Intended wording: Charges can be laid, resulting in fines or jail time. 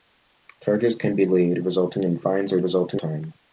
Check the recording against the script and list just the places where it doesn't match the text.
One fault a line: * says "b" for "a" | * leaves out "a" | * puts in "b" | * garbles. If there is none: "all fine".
* says "resulting" for "jail"